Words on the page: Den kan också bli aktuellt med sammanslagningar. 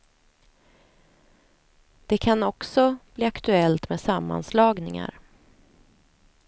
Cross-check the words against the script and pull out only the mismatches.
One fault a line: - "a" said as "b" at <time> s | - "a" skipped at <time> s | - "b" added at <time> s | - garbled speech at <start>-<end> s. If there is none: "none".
- "Den" said as "Det" at 2.0 s